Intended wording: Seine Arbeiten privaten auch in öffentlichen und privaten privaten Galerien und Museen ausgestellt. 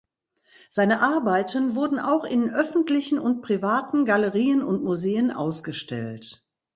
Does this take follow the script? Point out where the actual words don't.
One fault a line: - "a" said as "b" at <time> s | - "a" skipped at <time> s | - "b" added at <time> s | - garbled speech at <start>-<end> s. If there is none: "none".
- "privaten" said as "wurden" at 1.8 s
- "privaten" skipped at 4.0 s